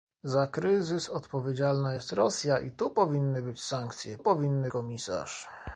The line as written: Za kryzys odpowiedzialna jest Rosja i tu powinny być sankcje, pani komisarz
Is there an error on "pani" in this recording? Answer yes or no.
yes